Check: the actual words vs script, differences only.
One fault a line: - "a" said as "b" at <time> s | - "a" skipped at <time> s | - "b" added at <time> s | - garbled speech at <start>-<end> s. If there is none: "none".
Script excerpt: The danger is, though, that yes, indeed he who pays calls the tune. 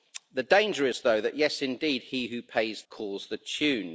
none